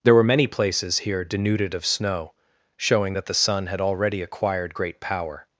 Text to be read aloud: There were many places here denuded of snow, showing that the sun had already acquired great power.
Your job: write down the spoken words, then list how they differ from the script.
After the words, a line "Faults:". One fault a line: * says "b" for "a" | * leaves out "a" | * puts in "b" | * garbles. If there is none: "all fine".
There were many places here denuded of snow, showing that the sun had already acquired great power.
Faults:
all fine